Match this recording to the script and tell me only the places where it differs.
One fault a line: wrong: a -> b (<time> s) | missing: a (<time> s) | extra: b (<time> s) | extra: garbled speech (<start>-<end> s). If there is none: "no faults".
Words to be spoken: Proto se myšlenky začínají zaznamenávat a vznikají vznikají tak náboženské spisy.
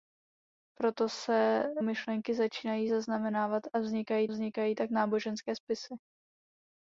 no faults